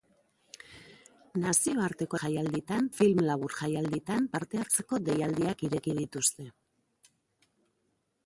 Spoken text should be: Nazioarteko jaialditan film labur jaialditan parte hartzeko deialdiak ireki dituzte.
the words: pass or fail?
pass